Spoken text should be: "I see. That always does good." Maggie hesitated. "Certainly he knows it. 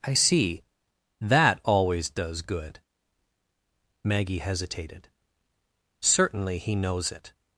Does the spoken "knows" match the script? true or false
true